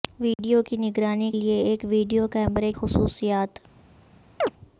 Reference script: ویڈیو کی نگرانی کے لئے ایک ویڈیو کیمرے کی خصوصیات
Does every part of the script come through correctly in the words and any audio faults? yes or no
no